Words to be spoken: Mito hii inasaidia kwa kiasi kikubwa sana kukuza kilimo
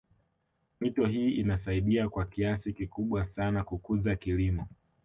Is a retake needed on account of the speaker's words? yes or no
no